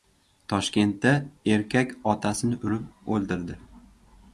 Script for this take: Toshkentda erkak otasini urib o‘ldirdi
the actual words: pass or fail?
pass